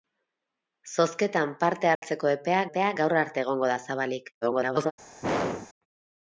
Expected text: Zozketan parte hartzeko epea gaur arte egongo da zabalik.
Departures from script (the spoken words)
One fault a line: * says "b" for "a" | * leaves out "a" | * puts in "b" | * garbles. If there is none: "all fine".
* puts in "epea"
* garbles